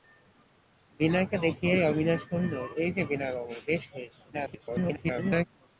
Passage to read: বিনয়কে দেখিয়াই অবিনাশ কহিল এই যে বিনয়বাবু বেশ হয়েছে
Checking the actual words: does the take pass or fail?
fail